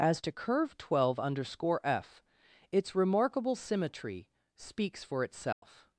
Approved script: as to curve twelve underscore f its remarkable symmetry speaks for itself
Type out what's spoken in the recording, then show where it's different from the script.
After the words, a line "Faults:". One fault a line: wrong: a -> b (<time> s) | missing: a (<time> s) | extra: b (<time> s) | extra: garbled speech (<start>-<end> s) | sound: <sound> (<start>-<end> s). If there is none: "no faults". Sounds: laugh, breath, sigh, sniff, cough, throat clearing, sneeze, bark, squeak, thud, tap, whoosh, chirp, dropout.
as to curve twelve underscore f its remarkable symmetry speaks for itself
Faults:
sound: dropout (5.5-5.6 s)